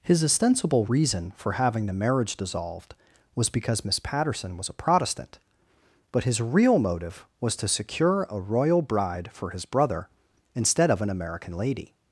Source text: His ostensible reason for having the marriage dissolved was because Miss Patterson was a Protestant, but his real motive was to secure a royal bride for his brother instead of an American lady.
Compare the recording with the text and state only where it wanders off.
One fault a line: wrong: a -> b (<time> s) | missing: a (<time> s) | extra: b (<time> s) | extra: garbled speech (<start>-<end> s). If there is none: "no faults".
no faults